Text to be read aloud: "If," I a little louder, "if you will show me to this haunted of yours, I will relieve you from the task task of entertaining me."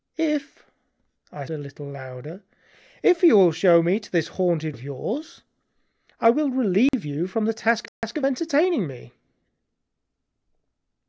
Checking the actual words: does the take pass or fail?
pass